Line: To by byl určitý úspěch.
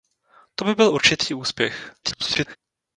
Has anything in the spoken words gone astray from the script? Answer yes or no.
yes